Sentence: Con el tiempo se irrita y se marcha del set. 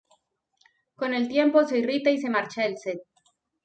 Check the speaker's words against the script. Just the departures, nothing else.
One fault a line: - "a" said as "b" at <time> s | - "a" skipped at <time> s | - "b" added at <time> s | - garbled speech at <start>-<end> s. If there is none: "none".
none